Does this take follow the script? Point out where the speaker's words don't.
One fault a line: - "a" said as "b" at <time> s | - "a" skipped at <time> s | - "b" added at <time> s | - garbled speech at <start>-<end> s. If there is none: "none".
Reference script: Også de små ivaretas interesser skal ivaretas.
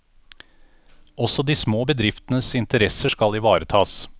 - "ivaretas" said as "bedriftenes" at 1.8 s